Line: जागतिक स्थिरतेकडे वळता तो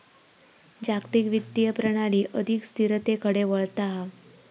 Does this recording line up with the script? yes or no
no